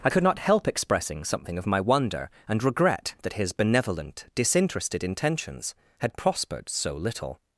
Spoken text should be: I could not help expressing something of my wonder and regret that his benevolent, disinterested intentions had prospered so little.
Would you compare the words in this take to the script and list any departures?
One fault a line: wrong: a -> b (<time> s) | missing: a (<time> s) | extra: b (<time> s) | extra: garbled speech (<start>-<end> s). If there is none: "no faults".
no faults